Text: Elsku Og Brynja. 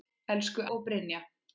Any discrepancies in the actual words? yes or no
no